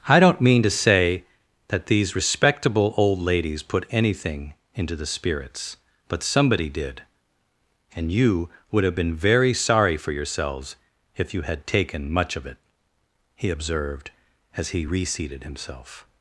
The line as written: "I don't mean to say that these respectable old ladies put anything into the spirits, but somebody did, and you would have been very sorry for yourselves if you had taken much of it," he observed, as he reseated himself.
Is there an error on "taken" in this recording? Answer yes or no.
no